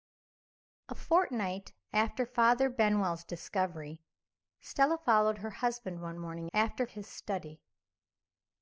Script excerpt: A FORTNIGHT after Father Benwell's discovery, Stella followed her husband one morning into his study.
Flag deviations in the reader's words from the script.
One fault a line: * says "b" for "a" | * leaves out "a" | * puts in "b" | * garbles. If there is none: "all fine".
* says "after" for "into"